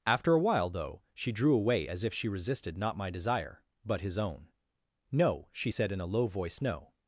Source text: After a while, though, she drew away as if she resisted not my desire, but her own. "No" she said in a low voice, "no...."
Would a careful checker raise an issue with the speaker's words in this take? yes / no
yes